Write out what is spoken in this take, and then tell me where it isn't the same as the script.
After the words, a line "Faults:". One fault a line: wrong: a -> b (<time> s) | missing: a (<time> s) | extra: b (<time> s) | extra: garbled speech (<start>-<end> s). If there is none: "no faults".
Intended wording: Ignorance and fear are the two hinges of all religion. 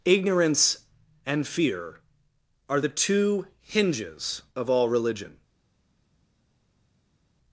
Ignorance and fear are the two hinges of all religion.
Faults:
no faults